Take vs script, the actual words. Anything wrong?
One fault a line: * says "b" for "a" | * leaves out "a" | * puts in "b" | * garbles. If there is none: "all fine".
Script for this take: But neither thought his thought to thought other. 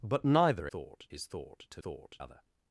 all fine